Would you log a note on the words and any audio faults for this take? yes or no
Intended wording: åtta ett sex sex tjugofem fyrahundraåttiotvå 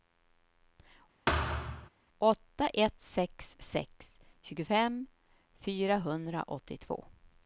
yes